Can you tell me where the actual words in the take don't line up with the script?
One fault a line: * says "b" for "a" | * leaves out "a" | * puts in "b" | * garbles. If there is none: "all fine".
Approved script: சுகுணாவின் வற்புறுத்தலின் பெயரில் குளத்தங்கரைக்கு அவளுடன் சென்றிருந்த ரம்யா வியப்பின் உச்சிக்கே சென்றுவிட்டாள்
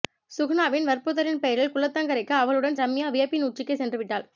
* leaves out "சென்றிருந்த"